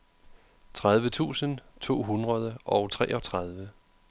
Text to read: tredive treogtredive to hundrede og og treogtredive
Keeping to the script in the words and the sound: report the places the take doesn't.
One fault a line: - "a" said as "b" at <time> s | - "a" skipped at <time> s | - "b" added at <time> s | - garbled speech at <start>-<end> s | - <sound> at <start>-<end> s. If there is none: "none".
- "treogtredive" said as "tusind" at 1.1 s
- "og" skipped at 2.9 s